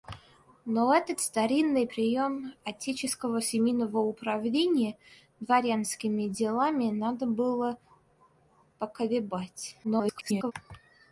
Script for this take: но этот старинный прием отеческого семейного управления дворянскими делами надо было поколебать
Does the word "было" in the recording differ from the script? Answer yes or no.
no